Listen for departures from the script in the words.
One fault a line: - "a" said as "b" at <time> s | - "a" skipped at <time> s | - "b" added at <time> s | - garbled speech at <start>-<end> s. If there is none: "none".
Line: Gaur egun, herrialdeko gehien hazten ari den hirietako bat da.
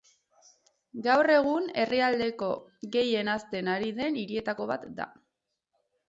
none